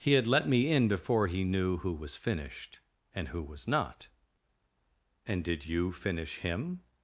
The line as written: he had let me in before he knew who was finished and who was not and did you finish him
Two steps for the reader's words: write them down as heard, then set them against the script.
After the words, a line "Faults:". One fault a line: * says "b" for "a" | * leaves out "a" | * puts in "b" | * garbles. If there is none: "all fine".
he had let me in before he knew who was finished and who was not and did you finish him
Faults:
all fine